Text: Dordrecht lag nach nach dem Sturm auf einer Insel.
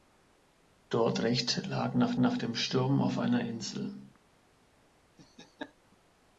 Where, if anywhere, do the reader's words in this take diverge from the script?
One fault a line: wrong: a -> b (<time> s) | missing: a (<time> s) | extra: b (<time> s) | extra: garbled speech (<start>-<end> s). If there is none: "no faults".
no faults